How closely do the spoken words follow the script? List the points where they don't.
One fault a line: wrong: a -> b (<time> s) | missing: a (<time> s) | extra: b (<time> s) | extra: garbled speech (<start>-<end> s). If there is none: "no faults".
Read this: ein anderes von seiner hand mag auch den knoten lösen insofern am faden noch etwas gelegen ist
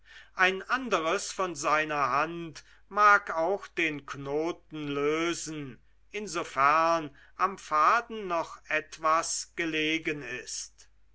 no faults